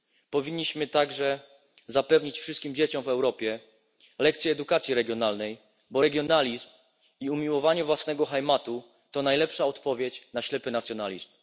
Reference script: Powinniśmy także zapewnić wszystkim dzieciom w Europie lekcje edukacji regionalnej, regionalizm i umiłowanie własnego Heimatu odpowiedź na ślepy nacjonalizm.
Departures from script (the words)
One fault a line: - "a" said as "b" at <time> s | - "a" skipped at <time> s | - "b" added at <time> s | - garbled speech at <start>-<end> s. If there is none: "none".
- "bo" added at 5.9 s
- "to najlepsza" added at 9.1 s